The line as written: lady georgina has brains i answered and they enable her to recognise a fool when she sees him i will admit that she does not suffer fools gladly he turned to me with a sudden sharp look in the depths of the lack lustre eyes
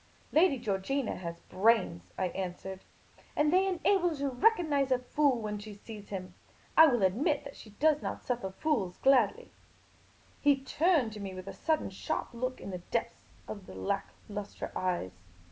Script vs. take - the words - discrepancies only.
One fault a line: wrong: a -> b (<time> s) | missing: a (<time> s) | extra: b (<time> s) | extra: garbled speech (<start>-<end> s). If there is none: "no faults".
no faults